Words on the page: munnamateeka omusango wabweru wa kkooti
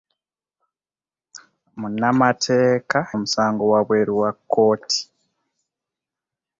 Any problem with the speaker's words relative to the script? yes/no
no